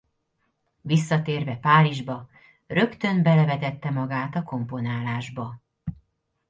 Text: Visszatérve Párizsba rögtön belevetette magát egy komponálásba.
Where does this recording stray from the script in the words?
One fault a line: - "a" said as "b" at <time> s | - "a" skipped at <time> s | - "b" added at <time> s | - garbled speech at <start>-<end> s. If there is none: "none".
- "egy" said as "a" at 4.3 s